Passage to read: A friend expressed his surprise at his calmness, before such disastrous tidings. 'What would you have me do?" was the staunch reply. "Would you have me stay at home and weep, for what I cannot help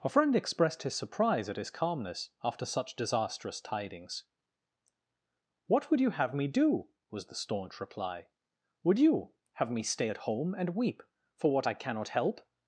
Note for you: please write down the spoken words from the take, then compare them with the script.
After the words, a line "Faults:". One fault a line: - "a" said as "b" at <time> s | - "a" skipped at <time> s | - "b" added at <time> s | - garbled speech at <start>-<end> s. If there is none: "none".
A friend expressed his surprise at his calmness, after such disastrous tidings. 'What would you have me do?" was the staunch reply. "Would you have me stay at home and weep, for what I cannot help
Faults:
- "before" said as "after" at 2.4 s